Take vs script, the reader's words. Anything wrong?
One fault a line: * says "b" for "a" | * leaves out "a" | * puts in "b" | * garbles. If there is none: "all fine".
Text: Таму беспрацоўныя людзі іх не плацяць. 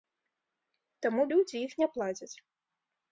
* leaves out "беспрацоўныя"